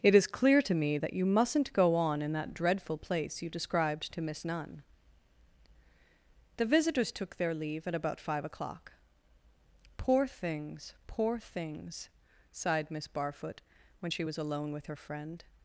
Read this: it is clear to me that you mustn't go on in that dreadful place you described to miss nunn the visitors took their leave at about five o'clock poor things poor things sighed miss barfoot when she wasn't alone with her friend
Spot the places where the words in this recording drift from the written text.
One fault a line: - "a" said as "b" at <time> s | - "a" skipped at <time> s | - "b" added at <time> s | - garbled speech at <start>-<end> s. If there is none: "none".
- "wasn't" said as "was" at 14.2 s